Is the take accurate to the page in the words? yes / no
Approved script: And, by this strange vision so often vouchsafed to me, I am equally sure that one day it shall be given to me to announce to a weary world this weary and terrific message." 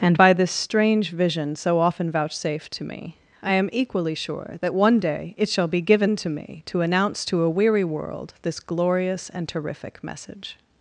no